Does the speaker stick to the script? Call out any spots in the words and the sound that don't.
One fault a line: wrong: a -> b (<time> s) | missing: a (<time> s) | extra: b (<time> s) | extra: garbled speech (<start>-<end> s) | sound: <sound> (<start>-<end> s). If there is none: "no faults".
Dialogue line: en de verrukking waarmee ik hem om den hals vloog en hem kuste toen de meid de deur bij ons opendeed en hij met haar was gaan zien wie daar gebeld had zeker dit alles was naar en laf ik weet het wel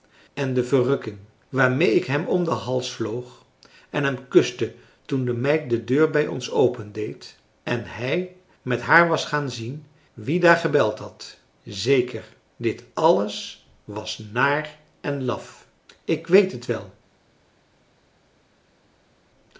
no faults